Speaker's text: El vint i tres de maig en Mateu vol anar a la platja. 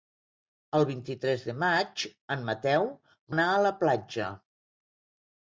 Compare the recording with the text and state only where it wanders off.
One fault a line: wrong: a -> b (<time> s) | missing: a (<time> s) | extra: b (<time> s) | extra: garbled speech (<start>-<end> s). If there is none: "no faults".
missing: vol (2.9 s)